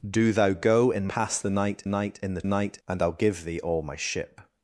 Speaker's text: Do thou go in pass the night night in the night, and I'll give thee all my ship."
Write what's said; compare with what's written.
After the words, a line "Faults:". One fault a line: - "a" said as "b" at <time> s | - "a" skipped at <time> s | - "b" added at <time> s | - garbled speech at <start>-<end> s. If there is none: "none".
Do thou go in pass the night night in the night, and I'll give thee all my ship."
Faults:
none